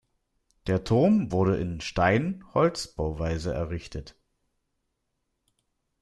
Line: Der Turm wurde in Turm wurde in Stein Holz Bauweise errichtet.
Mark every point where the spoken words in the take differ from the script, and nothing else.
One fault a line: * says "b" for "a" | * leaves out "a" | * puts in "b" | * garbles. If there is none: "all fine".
* leaves out "Turm wurde in"